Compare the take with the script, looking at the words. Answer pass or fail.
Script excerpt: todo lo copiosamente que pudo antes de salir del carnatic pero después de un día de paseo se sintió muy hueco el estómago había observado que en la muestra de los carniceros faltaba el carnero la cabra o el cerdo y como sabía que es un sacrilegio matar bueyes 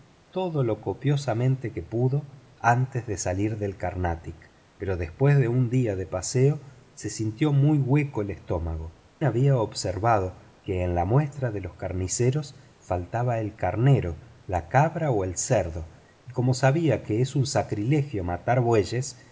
pass